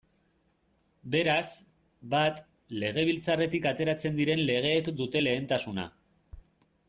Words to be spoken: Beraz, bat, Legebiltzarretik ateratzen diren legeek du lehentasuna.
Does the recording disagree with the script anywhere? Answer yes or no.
yes